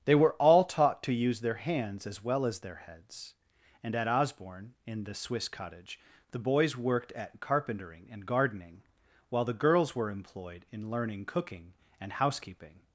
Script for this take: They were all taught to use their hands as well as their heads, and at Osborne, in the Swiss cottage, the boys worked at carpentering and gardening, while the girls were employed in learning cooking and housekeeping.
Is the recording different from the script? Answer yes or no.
no